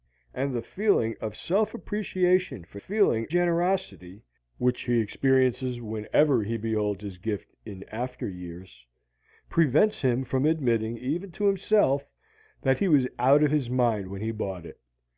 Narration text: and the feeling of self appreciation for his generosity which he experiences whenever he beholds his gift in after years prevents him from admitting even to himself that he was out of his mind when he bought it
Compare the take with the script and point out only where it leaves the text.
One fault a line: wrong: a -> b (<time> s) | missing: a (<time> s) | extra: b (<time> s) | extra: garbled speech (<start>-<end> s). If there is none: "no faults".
wrong: his -> feeling (2.7 s)